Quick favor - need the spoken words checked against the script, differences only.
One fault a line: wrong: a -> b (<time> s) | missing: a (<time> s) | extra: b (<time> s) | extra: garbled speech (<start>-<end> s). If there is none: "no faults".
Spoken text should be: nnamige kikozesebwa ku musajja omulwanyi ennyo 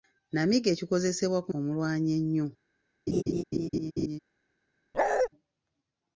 missing: musajja (1.5 s)